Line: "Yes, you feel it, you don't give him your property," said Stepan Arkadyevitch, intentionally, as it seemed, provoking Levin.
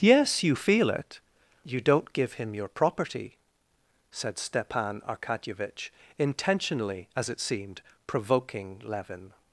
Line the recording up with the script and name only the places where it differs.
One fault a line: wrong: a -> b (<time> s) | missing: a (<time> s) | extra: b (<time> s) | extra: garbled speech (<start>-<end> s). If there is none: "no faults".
no faults